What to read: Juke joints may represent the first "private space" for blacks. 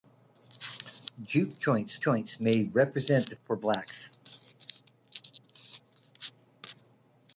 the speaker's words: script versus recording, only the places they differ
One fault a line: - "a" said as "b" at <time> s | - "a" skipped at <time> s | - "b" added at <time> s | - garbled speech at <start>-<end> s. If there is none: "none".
- "joints" added at 2.0 s
- "first private space" skipped at 3.3 s